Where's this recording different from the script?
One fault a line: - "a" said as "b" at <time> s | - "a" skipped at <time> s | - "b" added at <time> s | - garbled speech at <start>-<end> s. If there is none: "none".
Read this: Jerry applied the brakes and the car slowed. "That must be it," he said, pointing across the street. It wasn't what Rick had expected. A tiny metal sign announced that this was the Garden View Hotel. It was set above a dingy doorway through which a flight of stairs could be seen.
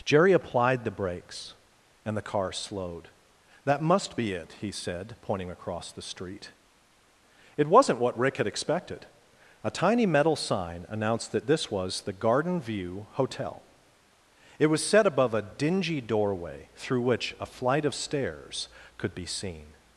none